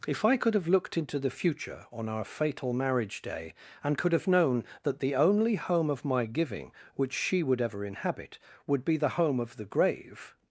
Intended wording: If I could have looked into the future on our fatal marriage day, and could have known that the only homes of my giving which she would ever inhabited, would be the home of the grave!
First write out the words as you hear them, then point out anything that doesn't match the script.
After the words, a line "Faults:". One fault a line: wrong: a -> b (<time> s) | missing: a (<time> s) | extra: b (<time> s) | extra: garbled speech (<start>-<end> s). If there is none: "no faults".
If I could have looked into the future on our fatal marriage day, and could have known that the only home of my giving which she would ever inhabit, would be the home of the grave!
Faults:
wrong: homes -> home (5.5 s)
wrong: inhabited -> inhabit (7.8 s)